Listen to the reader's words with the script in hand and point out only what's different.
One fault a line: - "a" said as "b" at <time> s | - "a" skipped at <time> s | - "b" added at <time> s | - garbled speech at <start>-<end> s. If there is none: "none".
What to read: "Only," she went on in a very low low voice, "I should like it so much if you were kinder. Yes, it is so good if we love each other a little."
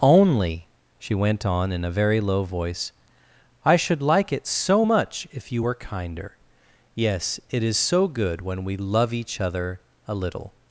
- "low" skipped at 2.4 s
- "if" said as "when" at 8.4 s